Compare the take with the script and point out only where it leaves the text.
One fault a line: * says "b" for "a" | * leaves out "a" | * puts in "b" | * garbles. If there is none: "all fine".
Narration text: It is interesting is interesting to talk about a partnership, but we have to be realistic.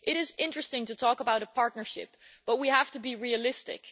* leaves out "is interesting"